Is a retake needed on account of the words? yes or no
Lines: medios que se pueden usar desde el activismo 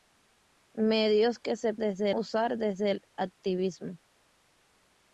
yes